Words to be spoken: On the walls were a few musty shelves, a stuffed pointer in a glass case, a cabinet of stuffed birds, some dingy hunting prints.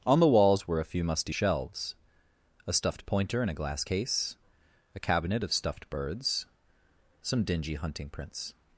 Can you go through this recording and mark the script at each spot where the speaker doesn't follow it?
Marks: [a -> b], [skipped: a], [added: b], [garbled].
On the walls were a few musty shelves, a stuffed pointer in a glass case, a cabinet of stuffed birds, some dingy hunting prints.